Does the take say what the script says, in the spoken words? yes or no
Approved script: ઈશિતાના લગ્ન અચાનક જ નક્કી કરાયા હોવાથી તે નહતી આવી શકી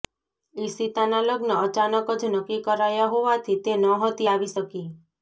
yes